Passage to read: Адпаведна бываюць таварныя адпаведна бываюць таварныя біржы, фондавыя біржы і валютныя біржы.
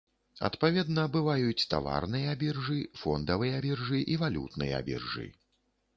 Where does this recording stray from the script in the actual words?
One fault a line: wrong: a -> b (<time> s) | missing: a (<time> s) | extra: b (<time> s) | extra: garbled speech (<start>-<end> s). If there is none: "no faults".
missing: адпаведна бываюць таварныя (2.3 s)